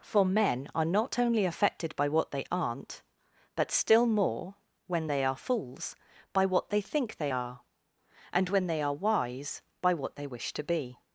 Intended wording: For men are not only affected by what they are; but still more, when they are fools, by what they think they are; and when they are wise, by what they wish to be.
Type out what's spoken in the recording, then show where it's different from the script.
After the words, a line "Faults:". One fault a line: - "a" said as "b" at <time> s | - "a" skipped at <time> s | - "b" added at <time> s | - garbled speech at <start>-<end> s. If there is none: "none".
For men are not only affected by what they aren't; but still more, when they are fools, by what they think they are; and when they are wise, by what they wish to be.
Faults:
- "are" said as "aren't" at 2.5 s